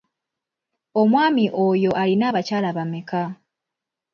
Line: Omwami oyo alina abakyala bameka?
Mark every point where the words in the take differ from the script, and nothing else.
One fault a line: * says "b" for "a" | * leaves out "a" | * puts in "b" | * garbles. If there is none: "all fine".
all fine